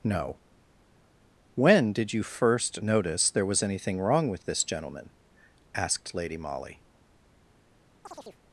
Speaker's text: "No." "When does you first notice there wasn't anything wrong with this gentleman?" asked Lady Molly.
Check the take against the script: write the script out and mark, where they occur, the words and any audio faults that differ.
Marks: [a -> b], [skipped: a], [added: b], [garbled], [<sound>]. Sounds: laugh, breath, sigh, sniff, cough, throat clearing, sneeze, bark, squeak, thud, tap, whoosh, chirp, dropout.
"No." "When [does -> did] you first notice there [wasn't -> was] anything wrong with this gentleman?" asked Lady Molly. [chirp]